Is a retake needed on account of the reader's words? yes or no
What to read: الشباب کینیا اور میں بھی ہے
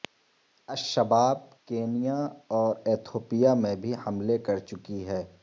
yes